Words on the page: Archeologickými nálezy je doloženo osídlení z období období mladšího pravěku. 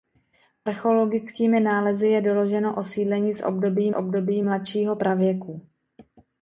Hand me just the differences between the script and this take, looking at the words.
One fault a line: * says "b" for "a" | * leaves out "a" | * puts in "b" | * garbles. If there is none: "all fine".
all fine